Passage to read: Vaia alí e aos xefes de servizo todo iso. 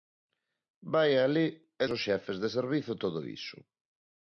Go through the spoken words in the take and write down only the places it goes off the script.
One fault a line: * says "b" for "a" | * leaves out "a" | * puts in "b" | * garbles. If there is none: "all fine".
all fine